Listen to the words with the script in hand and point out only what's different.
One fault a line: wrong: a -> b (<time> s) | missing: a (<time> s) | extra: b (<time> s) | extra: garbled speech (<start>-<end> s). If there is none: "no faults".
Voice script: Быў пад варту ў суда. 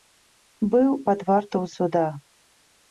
no faults